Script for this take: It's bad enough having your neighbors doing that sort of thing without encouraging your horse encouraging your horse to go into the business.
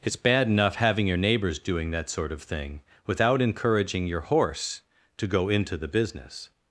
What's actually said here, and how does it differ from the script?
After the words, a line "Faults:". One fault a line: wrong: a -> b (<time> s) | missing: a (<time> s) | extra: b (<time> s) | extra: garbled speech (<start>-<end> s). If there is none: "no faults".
It's bad enough having your neighbors doing that sort of thing without encouraging your horse to go into the business.
Faults:
missing: encouraging your horse (4.8 s)